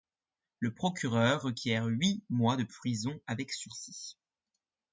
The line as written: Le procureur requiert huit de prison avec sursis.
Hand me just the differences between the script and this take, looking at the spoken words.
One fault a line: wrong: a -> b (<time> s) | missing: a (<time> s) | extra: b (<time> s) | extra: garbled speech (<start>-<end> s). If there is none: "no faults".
extra: mois (2.3 s)